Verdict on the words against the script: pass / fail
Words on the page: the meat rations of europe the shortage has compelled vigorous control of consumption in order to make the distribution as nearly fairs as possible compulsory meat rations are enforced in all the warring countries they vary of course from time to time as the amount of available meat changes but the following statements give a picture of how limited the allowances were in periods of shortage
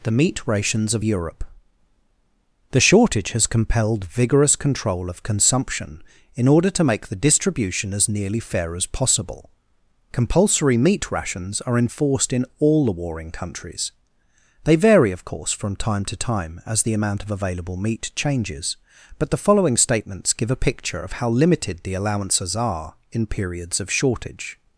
fail